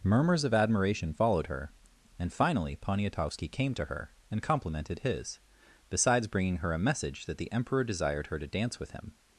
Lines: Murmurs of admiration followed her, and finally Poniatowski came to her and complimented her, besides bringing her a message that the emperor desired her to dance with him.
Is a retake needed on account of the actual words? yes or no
yes